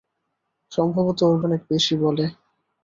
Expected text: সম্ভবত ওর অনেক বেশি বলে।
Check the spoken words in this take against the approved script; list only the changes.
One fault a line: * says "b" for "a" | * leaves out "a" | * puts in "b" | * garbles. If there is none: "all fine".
all fine